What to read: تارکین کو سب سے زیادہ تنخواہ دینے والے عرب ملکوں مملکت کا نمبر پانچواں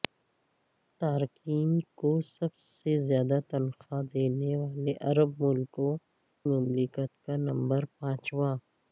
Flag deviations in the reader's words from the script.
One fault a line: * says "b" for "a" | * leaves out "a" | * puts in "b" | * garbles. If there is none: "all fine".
all fine